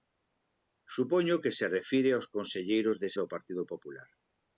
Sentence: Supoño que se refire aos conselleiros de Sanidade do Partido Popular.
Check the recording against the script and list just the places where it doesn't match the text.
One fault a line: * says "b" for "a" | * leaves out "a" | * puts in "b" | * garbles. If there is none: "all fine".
* leaves out "Sanidade"